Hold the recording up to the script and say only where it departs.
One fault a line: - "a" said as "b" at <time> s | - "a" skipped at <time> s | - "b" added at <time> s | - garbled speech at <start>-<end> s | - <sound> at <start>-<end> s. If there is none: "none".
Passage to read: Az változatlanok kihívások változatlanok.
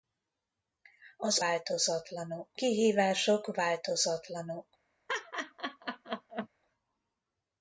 - laugh at 5.1-6.5 s